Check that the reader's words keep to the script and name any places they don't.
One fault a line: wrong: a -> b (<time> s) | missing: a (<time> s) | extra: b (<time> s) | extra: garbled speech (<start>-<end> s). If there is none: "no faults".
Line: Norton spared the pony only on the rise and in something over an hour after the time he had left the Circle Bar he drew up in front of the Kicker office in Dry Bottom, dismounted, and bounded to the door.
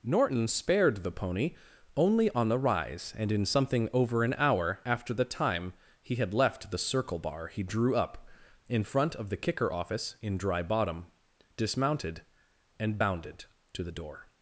no faults